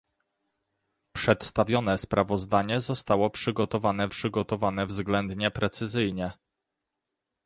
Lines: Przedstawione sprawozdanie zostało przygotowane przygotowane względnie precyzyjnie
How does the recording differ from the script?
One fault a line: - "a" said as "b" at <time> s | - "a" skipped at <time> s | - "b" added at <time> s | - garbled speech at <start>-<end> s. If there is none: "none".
none